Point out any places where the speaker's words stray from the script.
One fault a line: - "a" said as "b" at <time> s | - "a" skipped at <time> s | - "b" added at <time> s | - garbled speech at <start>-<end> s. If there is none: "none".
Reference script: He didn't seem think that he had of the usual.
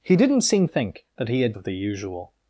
none